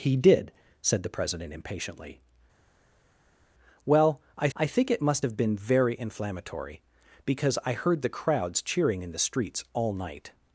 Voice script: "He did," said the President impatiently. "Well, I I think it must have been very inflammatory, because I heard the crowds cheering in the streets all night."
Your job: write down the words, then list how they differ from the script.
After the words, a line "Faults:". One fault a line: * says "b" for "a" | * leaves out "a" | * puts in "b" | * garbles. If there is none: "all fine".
"He did," said the President impatiently. "Well, I I think it must have been very inflammatory, because I heard the crowds cheering in the streets all night."
Faults:
all fine